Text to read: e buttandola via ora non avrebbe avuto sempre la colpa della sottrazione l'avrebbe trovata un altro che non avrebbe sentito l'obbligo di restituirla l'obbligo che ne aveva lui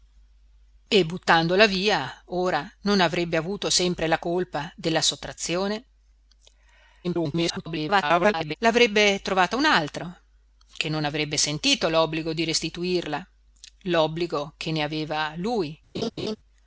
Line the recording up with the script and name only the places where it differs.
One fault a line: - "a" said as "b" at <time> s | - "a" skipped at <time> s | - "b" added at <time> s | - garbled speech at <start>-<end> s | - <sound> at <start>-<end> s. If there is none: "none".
- garbled speech at 7.0-8.5 s
- laugh at 15.9-16.4 s